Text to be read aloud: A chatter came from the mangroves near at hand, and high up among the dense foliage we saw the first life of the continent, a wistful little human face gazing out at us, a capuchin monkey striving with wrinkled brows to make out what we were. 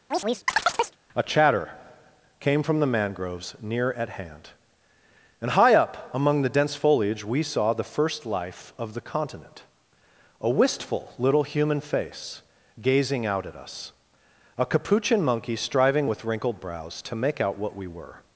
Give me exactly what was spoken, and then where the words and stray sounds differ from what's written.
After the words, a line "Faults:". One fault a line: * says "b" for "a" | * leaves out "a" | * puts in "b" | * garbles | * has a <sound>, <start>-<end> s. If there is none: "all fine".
A chatter came from the mangroves near at hand, and high up among the dense foliage we saw the first life of the continent, a wistful little human face gazing out at us, a capuchin monkey striving with wrinkled brows to make out what we were.
Faults:
* has a chirp, 0.1-1.0 s